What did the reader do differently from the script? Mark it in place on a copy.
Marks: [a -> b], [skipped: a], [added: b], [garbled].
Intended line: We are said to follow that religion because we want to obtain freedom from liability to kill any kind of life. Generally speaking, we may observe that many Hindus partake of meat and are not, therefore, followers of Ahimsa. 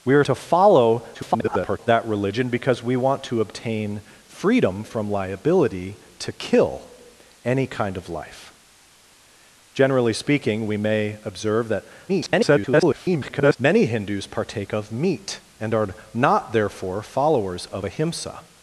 We are [skipped: said] to follow [garbled] that religion because we want to obtain freedom from liability to kill any kind of life. Generally speaking, we may observe that [garbled] many Hindus partake of meat and are not, therefore, followers of Ahimsa.